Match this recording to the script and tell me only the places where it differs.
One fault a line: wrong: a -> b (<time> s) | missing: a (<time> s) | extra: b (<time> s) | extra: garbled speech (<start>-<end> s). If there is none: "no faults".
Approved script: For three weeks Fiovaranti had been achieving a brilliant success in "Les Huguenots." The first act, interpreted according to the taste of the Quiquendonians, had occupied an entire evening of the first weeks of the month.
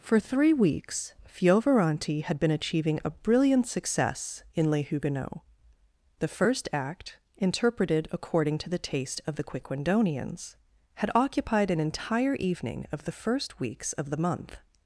no faults